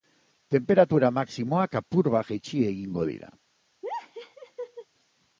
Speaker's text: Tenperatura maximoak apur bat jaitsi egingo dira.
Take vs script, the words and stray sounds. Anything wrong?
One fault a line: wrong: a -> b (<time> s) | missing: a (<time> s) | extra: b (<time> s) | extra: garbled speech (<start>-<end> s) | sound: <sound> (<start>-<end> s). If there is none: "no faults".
sound: laugh (3.8-4.9 s)